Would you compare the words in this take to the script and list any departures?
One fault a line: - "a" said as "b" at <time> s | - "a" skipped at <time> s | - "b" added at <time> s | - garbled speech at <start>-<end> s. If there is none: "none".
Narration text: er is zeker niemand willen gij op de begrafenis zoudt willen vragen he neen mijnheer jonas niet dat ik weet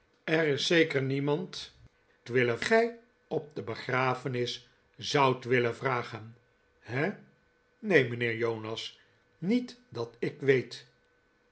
none